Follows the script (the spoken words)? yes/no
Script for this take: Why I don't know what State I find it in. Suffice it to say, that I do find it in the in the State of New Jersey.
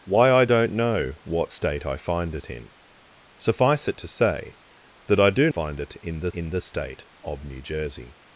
yes